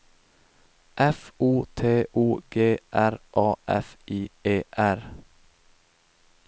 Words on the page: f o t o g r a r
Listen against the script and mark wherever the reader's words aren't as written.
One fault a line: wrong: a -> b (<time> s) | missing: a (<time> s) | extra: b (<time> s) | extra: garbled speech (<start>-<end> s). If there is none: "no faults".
extra: f i e (3.7 s)